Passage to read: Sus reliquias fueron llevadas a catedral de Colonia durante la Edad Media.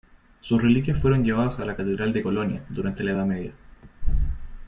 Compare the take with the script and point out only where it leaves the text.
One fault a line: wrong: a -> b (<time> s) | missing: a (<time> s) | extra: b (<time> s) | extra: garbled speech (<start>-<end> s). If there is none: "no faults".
extra: la (1.6 s)